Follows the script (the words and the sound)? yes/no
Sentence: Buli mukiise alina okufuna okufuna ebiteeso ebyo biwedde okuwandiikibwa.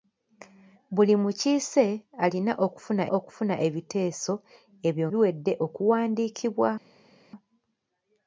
yes